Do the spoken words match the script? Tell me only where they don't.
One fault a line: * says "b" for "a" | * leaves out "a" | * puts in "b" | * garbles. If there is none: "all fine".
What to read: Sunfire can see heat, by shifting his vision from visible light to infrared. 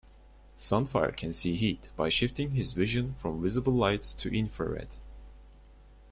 all fine